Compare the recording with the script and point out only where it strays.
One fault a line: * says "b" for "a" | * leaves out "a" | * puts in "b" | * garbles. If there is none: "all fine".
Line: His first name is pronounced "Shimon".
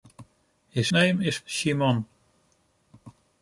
* leaves out "first"
* leaves out "pronounced"